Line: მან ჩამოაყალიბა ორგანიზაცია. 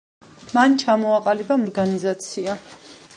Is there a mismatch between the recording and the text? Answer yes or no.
no